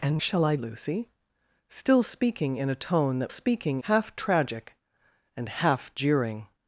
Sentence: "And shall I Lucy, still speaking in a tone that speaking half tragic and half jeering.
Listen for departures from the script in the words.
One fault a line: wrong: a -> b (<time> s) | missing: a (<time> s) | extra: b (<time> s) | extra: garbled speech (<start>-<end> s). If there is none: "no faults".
no faults